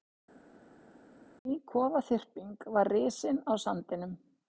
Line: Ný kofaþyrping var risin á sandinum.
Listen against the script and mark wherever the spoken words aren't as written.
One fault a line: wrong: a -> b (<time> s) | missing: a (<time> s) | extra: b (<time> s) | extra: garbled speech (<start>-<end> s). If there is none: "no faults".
no faults